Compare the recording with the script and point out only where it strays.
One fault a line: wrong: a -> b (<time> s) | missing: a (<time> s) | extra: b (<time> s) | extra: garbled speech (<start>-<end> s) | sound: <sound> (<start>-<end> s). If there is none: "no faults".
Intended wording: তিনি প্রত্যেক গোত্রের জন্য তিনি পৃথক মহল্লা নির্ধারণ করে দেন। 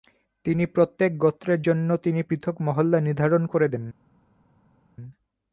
no faults